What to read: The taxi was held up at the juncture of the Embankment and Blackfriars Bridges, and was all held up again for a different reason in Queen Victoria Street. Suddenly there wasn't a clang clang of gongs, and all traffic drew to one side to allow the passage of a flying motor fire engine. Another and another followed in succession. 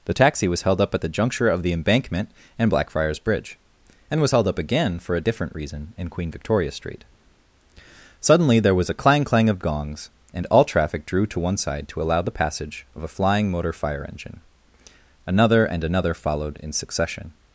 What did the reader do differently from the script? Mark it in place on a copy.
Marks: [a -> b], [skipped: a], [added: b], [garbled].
The taxi was held up at the juncture of the Embankment and Blackfriars [Bridges, -> Bridge] and was [skipped: all] held up again for a different reason in Queen Victoria Street. Suddenly there [wasn't -> was] a clang clang of gongs, and all traffic drew to one side to allow the passage of a flying motor fire engine. Another and another followed in succession.